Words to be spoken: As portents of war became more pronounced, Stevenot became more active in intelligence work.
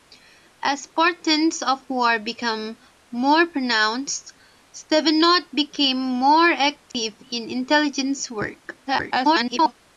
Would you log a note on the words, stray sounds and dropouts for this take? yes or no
yes